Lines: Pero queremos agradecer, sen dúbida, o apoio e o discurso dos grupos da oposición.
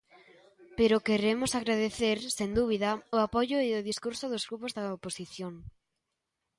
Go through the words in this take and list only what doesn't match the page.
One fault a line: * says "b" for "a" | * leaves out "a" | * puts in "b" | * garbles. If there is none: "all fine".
all fine